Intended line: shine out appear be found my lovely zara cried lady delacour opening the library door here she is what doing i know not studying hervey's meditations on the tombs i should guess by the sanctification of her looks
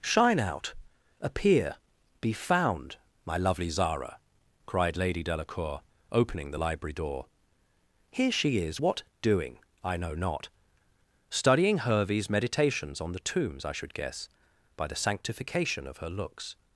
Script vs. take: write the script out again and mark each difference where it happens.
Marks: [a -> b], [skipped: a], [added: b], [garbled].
shine out appear be found my lovely zara cried lady delacour opening the library door here she is what doing i know not studying hervey's meditations on the tombs i should guess by the sanctification of her looks